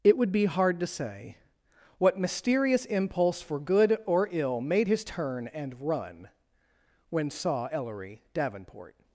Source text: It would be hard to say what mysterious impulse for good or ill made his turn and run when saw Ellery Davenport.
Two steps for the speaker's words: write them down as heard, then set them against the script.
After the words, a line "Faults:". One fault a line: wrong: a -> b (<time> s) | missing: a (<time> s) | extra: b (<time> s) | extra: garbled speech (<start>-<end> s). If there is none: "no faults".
It would be hard to say what mysterious impulse for good or ill made his turn and run when saw Ellery Davenport.
Faults:
no faults